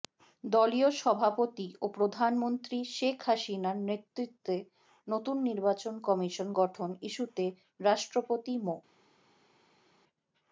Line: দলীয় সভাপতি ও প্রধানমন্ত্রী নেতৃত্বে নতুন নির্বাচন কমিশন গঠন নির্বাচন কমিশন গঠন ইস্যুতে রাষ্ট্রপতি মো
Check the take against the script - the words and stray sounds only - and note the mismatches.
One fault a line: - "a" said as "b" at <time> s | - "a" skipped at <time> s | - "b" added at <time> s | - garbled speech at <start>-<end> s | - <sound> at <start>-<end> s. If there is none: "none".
- "শেখ হাসিনার" added at 2.9 s
- "নির্বাচন কমিশন গঠন" skipped at 6.9 s